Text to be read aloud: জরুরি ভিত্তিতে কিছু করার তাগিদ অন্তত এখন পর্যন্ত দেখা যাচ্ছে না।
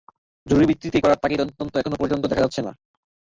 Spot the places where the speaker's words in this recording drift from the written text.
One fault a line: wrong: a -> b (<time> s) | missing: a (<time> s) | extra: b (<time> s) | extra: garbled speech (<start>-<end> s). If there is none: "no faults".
missing: কিছু (1.0 s)